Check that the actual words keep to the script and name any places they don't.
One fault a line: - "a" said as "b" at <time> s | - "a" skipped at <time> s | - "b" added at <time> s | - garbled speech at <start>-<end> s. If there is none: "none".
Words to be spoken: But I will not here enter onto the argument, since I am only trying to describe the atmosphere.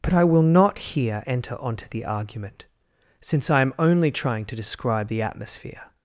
none